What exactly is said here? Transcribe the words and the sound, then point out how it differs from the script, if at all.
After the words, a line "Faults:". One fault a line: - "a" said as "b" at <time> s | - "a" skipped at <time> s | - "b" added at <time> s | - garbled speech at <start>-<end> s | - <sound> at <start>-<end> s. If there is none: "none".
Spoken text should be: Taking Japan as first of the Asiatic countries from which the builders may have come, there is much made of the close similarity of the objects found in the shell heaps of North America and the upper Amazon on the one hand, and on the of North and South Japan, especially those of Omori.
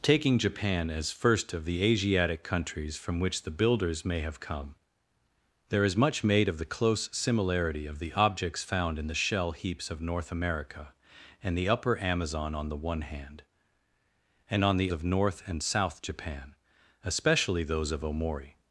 Taking Japan as first of the Asiatic countries from which the builders may have come, there is much made of the close similarity of the objects found in the shell heaps of North America and the upper Amazon on the one hand, and on the of North and South Japan, especially those of Omori.
Faults:
none